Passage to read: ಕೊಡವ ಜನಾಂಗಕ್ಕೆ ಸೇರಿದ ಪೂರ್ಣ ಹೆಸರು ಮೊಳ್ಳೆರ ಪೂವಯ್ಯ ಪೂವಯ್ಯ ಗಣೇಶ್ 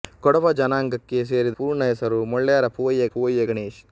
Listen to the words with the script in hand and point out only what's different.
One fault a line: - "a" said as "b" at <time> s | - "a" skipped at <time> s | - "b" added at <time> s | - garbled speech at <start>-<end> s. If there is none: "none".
none